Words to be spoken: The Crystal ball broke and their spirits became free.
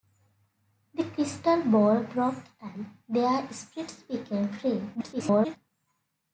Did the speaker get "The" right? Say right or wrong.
right